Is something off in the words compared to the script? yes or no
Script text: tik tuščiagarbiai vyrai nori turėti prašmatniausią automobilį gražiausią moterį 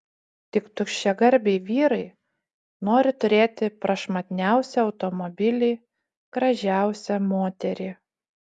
no